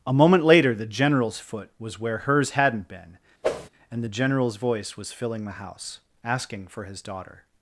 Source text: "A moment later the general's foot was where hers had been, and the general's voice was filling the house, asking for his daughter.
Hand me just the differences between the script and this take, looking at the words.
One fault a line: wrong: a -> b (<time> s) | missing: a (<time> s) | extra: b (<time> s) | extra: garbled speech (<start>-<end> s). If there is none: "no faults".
wrong: had -> hadn't (2.5 s)